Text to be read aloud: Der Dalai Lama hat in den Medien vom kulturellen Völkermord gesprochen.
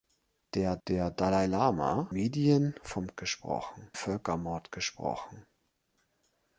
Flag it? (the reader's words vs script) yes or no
yes